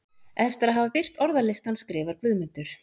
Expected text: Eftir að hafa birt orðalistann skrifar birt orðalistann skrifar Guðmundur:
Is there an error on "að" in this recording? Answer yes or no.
no